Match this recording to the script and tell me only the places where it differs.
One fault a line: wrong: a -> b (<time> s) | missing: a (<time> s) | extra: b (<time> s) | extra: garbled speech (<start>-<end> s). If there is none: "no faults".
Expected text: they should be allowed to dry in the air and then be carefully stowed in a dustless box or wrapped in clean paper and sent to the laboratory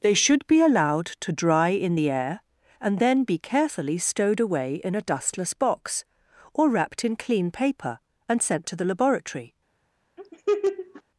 extra: away (4.4 s)